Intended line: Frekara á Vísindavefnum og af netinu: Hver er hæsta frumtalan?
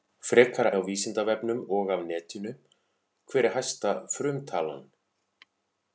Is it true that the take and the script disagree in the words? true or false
false